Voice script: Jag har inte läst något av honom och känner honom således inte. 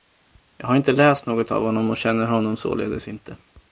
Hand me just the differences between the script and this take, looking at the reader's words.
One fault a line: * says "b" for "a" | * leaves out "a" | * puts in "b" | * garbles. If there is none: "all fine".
all fine